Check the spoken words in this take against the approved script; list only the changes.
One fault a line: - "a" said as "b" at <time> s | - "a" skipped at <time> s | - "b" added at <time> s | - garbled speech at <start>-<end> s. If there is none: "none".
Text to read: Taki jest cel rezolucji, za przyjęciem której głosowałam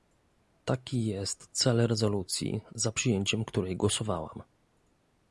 none